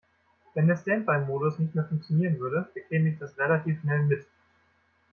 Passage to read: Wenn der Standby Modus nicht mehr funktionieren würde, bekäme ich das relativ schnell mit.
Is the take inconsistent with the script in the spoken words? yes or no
no